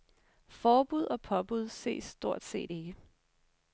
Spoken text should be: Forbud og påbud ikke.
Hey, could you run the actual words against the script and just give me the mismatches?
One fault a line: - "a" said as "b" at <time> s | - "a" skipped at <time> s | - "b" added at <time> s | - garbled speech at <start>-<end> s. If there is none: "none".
- "ses stort set" added at 1.7 s